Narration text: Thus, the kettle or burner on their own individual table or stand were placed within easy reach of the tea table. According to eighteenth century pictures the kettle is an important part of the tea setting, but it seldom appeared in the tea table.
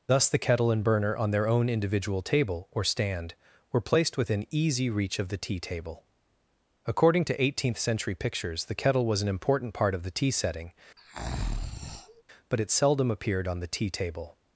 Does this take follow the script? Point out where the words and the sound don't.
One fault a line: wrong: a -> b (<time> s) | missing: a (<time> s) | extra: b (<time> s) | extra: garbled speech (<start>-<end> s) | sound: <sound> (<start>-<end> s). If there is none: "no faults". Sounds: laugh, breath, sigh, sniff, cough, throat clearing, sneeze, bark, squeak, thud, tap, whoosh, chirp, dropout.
wrong: or -> and (0.7 s)
wrong: is -> was (9.1 s)
sound: breath (11.0-12.2 s)
wrong: in -> on (13.5 s)